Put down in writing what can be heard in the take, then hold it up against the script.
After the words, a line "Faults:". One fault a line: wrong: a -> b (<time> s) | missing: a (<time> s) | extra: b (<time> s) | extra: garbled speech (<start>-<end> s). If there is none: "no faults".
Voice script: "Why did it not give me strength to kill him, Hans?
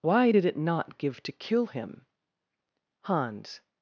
"Why did it not give to kill him, Hans?
Faults:
missing: me strength (1.2 s)